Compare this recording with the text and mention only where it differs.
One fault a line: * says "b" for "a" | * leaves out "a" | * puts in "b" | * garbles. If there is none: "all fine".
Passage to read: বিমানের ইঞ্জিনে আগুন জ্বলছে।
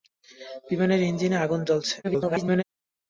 * garbles